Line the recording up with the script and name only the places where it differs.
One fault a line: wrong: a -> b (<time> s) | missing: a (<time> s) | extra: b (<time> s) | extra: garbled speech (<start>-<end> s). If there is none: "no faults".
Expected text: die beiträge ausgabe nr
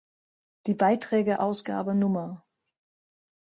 no faults